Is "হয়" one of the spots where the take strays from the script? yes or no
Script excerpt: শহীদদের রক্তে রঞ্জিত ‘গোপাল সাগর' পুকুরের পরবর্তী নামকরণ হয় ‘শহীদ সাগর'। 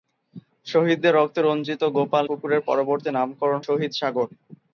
yes